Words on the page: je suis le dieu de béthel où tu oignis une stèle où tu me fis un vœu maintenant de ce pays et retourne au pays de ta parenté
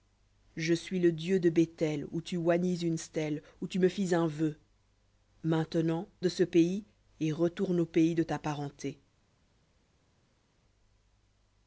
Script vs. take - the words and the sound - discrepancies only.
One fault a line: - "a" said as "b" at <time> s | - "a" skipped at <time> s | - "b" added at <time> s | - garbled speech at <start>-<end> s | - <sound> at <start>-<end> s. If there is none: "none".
none